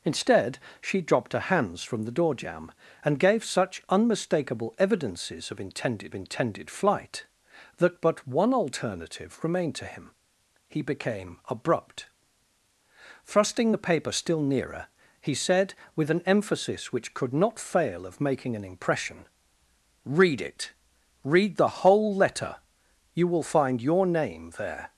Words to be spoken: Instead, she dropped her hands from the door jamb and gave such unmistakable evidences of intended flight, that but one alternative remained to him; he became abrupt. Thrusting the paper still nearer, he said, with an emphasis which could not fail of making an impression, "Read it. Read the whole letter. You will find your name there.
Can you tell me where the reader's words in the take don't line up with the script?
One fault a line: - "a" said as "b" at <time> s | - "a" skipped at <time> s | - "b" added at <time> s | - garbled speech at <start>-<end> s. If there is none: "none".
- "intended" added at 6.1 s